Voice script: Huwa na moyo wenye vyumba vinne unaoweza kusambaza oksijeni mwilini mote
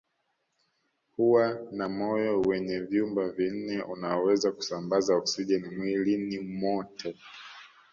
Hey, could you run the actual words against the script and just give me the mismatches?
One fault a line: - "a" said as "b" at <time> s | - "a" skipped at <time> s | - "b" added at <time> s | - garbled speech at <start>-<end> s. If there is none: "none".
none